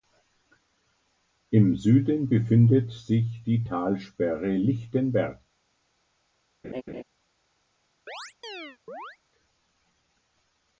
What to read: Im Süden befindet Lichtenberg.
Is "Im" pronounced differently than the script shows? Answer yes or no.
no